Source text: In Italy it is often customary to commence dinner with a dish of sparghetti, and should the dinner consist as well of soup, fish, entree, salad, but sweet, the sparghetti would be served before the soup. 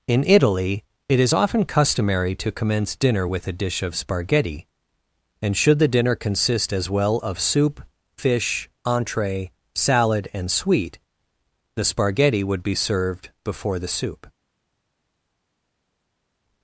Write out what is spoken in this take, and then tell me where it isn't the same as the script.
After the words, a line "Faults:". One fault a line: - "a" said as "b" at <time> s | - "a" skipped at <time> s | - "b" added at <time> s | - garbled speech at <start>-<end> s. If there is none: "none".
In Italy it is often customary to commence dinner with a dish of sparghetti, and should the dinner consist as well of soup, fish, entree, salad, and sweet, the sparghetti would be served before the soup.
Faults:
- "but" said as "and" at 10.3 s